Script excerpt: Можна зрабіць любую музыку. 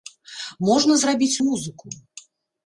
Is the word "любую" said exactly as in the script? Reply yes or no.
no